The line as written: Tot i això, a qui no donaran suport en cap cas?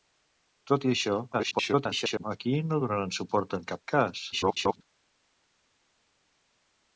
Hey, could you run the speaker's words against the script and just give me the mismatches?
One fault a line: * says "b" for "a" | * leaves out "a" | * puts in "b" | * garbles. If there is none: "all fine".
* garbles
* garbles